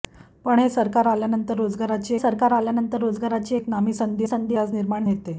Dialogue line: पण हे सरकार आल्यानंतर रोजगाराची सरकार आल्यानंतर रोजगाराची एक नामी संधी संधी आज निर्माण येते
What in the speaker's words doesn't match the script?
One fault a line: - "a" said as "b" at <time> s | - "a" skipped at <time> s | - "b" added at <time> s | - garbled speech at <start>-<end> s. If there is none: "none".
none